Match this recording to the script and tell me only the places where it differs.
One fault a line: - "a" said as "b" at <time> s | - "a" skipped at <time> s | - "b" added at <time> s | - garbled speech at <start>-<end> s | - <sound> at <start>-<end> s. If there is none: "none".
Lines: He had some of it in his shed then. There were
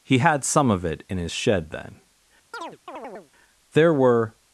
- chirp at 2.5-3.3 s